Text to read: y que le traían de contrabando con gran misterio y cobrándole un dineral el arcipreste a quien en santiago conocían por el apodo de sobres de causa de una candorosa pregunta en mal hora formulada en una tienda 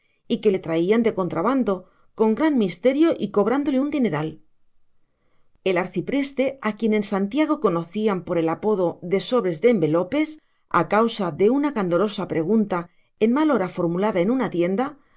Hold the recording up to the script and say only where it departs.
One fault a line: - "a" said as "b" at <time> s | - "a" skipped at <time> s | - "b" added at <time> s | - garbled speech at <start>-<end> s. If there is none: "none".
- "envelopes a" added at 9.7 s